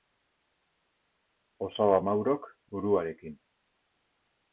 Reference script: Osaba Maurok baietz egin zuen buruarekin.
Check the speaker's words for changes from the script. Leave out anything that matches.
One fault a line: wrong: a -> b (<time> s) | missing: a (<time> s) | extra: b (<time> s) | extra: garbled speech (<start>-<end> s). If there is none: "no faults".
missing: baietz egin zuen (2.5 s)